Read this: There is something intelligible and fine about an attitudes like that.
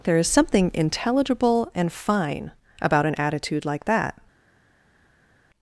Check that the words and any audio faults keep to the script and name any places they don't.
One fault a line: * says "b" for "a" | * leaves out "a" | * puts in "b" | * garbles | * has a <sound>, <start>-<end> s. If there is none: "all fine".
* says "attitude" for "attitudes"